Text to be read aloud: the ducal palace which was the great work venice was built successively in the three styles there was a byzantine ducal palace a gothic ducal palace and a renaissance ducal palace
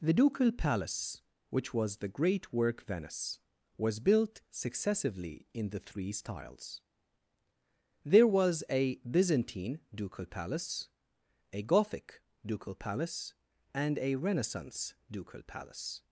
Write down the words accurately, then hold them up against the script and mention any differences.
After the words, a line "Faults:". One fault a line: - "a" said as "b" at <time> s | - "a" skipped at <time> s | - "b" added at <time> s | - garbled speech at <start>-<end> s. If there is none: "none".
the ducal palace which was the great work venice was built successively in the three styles there was a byzantine ducal palace a gothic ducal palace and a renaissance ducal palace
Faults:
none